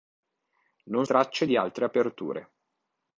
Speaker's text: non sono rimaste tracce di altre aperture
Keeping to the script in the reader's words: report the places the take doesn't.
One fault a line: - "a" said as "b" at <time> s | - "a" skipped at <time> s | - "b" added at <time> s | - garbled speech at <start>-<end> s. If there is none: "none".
- "sono rimaste" skipped at 1.1 s